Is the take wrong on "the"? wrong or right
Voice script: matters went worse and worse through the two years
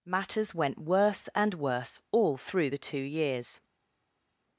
right